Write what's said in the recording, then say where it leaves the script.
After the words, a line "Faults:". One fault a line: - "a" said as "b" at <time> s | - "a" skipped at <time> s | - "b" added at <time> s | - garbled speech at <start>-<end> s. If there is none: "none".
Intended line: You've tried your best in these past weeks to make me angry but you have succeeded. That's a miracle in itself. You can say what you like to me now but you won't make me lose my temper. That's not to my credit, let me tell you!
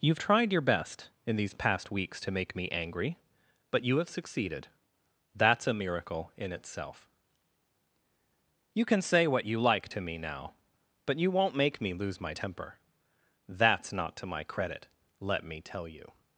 You've tried your best in these past weeks to make me angry but you have succeeded. That's a miracle in itself. You can say what you like to me now but you won't make me lose my temper. That's not to my credit, let me tell you!
Faults:
none